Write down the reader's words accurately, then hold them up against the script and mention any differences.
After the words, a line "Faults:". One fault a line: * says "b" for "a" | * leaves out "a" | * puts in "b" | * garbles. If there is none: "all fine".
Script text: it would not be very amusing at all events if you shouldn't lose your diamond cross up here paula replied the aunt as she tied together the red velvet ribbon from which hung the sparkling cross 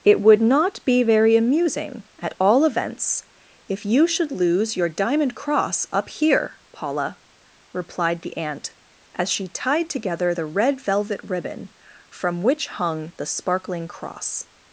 it would not be very amusing at all events if you should lose your diamond cross up here paula replied the aunt as she tied together the red velvet ribbon from which hung the sparkling cross
Faults:
* says "should" for "shouldn't"